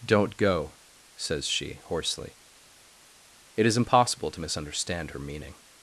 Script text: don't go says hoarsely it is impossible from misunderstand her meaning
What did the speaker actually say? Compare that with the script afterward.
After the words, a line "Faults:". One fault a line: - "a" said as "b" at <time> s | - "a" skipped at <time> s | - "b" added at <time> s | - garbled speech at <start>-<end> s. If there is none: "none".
don't go says she hoarsely it is impossible to misunderstand her meaning
Faults:
- "she" added at 1.5 s
- "from" said as "to" at 4.3 s